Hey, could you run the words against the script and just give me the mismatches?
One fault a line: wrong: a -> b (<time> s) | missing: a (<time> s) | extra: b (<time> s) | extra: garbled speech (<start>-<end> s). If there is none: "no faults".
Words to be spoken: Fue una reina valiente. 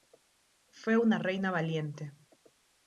no faults